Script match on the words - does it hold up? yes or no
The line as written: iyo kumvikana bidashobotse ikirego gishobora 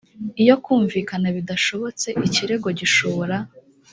yes